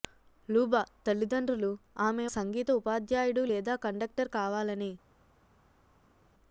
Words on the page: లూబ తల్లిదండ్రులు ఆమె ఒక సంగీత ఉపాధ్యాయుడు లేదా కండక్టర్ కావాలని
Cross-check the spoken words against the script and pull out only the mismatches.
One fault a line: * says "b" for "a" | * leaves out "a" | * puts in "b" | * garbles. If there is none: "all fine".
* leaves out "ఒక"